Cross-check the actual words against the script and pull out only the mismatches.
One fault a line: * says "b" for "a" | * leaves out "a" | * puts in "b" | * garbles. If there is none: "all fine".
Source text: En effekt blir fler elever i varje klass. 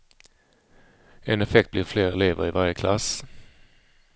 all fine